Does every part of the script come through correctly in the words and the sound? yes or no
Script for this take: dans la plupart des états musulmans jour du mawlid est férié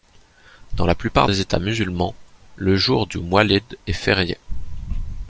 no